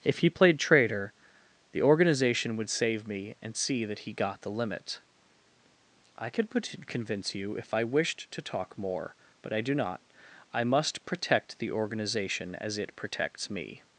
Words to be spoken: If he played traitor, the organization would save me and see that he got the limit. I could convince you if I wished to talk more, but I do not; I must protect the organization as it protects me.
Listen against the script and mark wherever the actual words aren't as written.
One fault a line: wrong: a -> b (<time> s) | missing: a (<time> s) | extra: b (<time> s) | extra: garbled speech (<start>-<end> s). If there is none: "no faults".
no faults